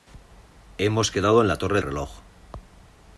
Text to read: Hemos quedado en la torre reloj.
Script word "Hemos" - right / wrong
right